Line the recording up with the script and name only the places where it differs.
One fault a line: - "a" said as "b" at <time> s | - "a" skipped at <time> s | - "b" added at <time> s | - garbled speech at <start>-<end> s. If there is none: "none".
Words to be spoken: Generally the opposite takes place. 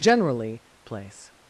- "the opposite takes" skipped at 0.6 s